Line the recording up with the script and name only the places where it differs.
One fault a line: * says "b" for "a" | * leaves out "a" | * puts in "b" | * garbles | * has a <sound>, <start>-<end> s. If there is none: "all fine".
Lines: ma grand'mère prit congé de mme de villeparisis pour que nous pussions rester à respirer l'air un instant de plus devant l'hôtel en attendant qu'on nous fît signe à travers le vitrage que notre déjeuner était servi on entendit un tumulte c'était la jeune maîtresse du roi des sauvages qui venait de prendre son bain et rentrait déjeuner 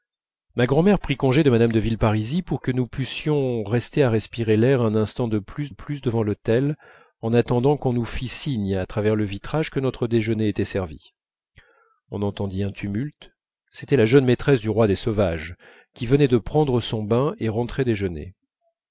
* puts in "plus"